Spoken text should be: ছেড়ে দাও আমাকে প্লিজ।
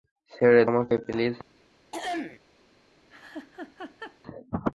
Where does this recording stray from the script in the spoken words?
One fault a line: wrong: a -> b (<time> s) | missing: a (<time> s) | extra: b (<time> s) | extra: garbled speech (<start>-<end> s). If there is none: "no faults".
missing: দাও (0.6 s)